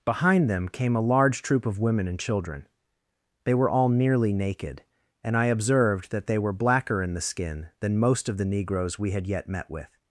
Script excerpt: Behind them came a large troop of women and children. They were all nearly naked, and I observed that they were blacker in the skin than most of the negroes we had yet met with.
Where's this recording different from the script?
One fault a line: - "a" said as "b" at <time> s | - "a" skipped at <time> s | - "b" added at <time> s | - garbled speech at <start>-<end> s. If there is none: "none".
none